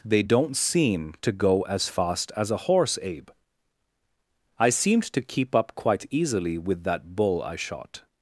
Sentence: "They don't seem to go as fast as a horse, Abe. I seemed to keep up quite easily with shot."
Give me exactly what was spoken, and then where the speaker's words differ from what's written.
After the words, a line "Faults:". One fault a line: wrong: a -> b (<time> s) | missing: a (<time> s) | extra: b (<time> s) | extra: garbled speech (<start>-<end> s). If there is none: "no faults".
"They don't seem to go as fast as a horse, Abe. I seemed to keep up quite easily with that bull I shot."
Faults:
extra: that bull I (6.8 s)